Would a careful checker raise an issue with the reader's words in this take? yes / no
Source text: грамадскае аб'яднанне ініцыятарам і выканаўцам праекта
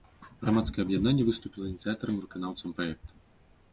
yes